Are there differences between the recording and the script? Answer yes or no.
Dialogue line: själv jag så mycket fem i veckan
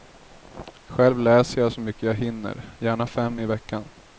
yes